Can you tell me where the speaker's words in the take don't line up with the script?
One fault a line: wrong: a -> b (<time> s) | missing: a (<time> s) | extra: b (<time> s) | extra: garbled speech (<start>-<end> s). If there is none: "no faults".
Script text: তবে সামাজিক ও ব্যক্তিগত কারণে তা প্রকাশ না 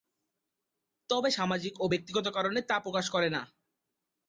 extra: করে (3.1 s)